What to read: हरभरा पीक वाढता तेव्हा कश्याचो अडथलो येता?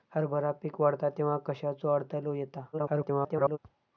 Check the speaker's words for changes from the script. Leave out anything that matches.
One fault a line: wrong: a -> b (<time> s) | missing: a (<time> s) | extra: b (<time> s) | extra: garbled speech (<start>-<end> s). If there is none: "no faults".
extra: garbled speech (2.7-3.6 s)